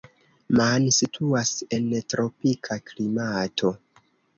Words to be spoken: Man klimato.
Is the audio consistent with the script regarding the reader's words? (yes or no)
no